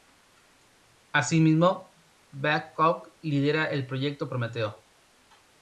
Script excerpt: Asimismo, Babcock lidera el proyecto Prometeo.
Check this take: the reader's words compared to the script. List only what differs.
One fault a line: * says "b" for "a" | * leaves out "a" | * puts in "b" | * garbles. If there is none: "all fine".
all fine